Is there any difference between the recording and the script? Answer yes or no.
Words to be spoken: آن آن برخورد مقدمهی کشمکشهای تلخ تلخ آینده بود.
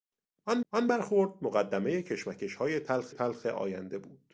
no